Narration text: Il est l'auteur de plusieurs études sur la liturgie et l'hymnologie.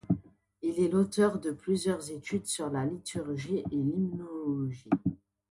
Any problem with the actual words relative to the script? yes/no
no